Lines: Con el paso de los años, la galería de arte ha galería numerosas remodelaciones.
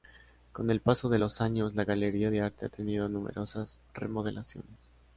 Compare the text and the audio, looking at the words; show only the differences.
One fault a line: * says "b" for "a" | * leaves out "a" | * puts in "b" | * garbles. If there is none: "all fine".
* says "tenido" for "galería"